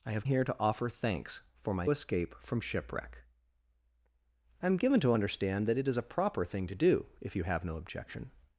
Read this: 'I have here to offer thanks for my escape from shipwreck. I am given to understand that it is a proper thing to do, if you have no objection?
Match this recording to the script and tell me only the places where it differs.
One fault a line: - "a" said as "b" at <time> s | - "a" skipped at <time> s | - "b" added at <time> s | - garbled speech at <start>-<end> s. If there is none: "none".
none